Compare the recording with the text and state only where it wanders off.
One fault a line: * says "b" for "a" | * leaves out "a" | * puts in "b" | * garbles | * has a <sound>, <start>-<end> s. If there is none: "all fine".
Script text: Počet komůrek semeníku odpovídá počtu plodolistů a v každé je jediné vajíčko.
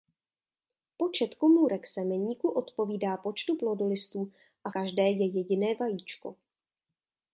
* leaves out "v"